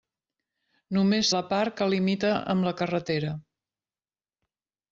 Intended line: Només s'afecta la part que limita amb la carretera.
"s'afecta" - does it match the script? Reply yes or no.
no